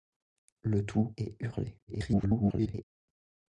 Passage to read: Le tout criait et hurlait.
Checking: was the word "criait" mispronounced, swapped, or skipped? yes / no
yes